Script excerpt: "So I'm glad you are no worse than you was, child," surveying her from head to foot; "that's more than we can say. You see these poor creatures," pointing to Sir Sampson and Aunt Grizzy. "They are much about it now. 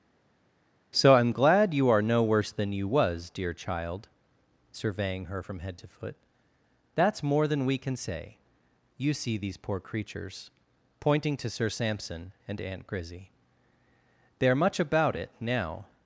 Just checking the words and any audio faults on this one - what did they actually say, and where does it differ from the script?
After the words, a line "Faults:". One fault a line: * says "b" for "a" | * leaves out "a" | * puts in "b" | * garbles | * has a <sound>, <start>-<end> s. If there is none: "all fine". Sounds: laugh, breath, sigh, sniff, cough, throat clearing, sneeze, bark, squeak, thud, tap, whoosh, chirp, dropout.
"So I'm glad you are no worse than you was, dear child," surveying her from head to foot; "that's more than we can say. You see these poor creatures," pointing to Sir Sampson and Aunt Grizzy. "They are much about it now.
Faults:
* puts in "dear"